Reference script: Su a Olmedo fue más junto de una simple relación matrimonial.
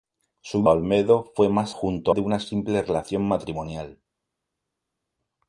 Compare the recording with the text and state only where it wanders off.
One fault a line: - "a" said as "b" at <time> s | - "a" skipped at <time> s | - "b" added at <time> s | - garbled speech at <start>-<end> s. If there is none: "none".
none